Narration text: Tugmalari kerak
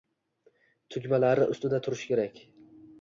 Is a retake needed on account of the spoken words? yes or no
yes